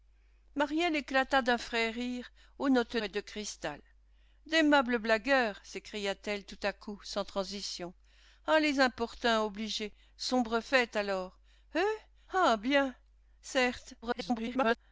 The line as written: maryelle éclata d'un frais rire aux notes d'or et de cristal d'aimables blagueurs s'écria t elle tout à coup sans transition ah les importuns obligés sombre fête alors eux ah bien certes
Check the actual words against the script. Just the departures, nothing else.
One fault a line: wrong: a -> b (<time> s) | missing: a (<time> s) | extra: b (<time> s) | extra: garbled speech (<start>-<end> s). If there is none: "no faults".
missing: d'or (3.0 s)
extra: garbled speech (14.0-14.8 s)